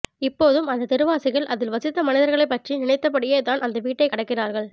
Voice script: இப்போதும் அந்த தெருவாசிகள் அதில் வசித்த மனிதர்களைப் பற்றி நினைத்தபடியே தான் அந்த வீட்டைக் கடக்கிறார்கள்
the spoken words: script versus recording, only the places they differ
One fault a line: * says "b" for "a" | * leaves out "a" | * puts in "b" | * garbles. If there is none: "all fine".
all fine